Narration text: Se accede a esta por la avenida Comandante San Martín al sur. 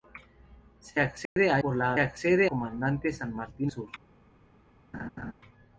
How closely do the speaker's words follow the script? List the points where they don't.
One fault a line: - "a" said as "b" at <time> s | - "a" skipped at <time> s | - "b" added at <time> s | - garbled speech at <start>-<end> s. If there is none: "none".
- "esta" skipped at 1.6 s
- "avenida" said as "accede" at 2.0 s
- "al" skipped at 3.7 s